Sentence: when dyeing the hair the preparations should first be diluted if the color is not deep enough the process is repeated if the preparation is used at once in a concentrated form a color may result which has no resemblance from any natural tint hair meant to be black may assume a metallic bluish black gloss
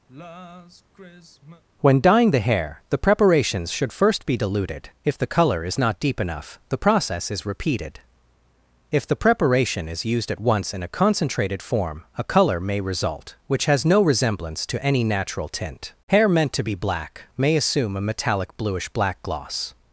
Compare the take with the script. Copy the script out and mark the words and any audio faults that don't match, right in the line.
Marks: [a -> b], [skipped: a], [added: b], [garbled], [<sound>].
[sigh] when dyeing the hair the preparations should first be diluted if the color is not deep enough the process is repeated if the preparation is used at once in a concentrated form a color may result which has no resemblance [from -> to] any natural tint hair meant to be black may assume a metallic bluish black gloss